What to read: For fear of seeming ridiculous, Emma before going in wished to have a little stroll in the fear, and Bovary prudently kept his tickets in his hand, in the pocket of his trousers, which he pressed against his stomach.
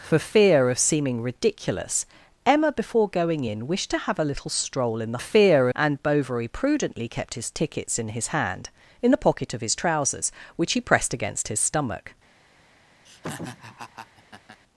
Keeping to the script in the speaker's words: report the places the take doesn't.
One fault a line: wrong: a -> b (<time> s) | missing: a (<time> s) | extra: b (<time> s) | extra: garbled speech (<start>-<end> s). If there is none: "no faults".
no faults